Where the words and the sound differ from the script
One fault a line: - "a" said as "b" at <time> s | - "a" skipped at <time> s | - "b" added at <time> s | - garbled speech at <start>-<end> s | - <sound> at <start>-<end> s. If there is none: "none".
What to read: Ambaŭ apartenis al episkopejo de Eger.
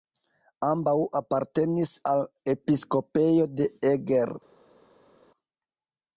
none